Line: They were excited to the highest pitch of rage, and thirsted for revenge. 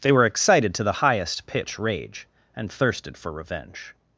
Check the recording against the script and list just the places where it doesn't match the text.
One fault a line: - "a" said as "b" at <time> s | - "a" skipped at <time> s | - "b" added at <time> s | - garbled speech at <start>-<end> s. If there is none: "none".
- "of" skipped at 1.8 s